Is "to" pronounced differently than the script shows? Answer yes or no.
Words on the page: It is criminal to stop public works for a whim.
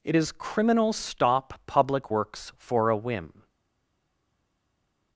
yes